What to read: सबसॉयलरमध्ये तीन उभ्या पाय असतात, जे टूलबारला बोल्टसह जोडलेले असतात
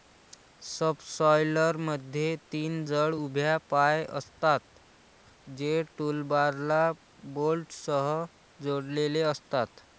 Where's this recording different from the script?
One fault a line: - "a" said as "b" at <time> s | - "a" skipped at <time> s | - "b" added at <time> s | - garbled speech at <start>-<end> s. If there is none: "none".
- "जड" added at 2.8 s